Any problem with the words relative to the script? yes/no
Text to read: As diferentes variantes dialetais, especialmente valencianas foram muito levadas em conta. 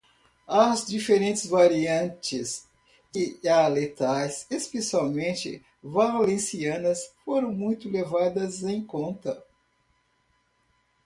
no